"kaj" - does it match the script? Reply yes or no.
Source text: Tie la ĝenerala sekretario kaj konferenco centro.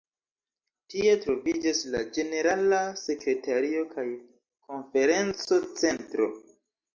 yes